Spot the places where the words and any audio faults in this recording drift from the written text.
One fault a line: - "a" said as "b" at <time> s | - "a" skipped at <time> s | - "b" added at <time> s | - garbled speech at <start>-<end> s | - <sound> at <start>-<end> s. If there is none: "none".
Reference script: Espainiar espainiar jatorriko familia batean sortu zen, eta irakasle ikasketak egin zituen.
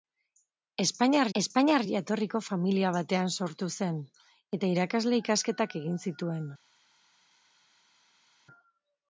none